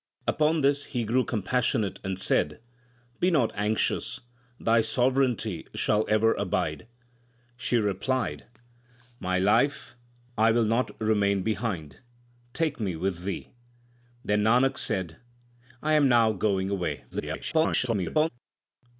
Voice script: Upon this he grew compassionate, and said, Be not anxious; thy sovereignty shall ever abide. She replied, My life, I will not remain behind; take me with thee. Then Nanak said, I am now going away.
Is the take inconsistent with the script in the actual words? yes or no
yes